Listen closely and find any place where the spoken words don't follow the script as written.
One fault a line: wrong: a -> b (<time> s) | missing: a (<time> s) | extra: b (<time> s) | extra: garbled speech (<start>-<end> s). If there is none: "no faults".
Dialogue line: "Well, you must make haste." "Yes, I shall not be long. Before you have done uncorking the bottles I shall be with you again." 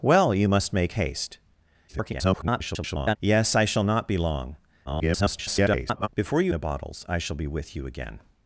extra: garbled speech (1.9-3.2 s)
extra: garbled speech (4.8-6.1 s)
missing: have done uncorking (6.5 s)